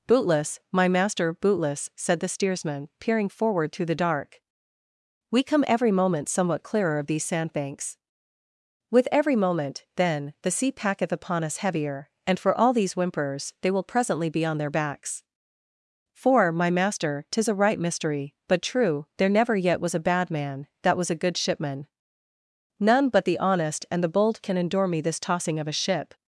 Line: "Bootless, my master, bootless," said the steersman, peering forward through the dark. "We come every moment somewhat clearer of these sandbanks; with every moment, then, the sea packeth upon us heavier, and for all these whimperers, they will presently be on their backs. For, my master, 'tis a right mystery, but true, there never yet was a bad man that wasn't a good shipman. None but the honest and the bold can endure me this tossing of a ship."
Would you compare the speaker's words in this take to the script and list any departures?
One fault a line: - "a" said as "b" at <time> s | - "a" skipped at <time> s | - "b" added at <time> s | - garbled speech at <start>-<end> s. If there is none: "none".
- "wasn't" said as "was" at 21.0 s